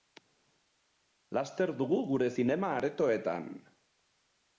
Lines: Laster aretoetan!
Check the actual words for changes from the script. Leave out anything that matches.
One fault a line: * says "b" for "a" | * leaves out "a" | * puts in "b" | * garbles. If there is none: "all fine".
* puts in "dugu gure zinema"